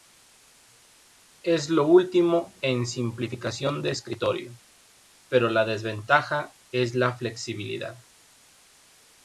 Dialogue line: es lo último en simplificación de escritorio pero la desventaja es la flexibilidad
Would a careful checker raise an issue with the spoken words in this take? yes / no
no